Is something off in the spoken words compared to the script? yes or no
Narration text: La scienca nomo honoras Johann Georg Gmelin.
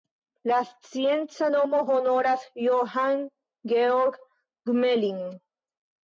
no